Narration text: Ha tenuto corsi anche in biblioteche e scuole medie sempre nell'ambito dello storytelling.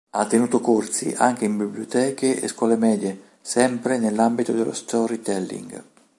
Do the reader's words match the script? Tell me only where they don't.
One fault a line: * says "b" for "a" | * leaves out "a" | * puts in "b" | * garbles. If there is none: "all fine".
all fine